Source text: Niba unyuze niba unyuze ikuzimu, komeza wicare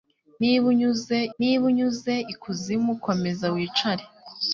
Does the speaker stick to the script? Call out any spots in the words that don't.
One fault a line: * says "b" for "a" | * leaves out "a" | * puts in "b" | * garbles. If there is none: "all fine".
all fine